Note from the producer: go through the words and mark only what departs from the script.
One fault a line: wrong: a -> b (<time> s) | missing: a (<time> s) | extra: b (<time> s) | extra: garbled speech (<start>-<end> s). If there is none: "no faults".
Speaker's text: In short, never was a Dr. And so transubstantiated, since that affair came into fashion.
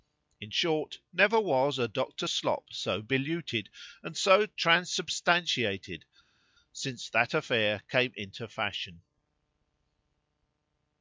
extra: Slop so beluted (2.3 s)